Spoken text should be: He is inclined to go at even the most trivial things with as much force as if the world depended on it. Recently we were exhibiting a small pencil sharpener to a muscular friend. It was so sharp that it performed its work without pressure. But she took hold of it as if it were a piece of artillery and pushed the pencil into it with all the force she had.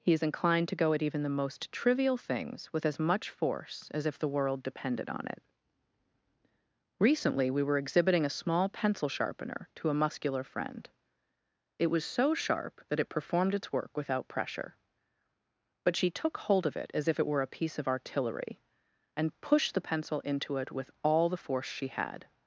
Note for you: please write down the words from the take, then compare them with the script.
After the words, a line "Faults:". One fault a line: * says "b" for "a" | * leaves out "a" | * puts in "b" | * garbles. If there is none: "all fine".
He is inclined to go at even the most trivial things with as much force as if the world depended on it. Recently we were exhibiting a small pencil sharpener to a muscular friend. It was so sharp that it performed its work without pressure. But she took hold of it as if it were a piece of artillery and pushed the pencil into it with all the force she had.
Faults:
all fine